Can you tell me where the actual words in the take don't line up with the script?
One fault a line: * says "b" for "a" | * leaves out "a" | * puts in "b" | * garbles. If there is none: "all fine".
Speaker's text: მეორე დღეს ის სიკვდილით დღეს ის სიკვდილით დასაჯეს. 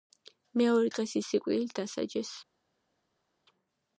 * leaves out "დღეს ის სიკვდილით"